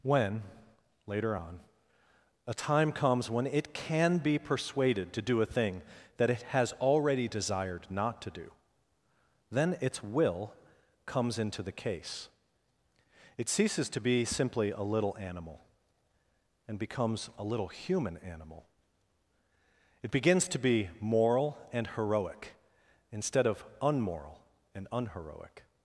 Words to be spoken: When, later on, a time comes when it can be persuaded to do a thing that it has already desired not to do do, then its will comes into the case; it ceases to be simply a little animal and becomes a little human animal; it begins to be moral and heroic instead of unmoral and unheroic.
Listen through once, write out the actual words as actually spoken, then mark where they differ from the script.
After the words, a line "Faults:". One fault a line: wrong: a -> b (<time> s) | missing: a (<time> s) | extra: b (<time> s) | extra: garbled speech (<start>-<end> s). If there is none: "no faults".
When, later on, a time comes when it can be persuaded to do a thing that it has already desired not to do, then its will comes into the case; it ceases to be simply a little animal and becomes a little human animal; it begins to be moral and heroic instead of unmoral and unheroic.
Faults:
missing: do (8.5 s)